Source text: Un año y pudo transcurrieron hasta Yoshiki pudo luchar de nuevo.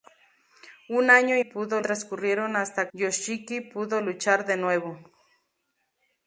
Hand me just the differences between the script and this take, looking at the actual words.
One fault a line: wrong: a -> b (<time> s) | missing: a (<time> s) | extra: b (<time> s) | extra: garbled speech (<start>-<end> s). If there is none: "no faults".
no faults